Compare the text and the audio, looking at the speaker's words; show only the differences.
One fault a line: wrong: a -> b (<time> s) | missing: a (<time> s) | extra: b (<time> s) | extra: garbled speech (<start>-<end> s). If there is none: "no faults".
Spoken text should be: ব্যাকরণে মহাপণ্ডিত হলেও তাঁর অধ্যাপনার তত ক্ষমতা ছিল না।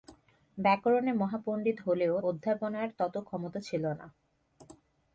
missing: তাঁর (2.1 s)